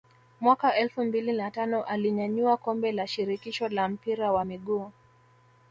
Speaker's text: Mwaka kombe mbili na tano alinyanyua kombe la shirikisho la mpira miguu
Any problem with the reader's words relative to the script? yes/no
yes